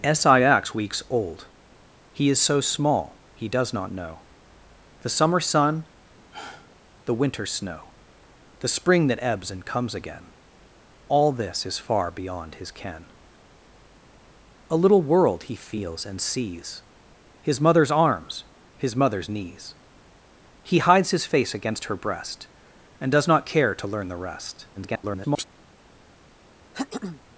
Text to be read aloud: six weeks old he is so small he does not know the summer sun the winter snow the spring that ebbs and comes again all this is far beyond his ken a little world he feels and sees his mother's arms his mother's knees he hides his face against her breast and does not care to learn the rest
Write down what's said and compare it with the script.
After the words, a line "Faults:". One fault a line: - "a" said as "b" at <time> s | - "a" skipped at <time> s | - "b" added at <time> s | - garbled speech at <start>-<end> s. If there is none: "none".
six weeks old he is so small he does not know the summer sun the winter snow the spring that ebbs and comes again all this is far beyond his ken a little world he feels and sees his mother's arms his mother's knees he hides his face against her breast and does not care to learn the rest [garbled]
Faults:
- garbled speech at 24.7-25.4 s